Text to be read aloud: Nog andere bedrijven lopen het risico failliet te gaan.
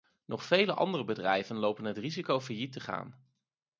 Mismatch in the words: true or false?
true